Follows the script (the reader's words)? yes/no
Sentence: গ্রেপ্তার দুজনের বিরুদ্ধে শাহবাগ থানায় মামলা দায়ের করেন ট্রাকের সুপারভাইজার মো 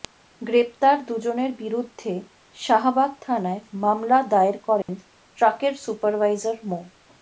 yes